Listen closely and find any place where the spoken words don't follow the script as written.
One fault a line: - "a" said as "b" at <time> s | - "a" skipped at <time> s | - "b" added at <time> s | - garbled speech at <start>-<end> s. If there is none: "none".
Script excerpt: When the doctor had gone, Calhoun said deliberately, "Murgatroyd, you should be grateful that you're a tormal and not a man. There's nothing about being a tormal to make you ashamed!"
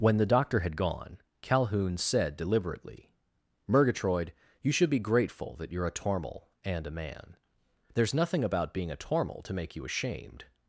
- "not" skipped at 6.9 s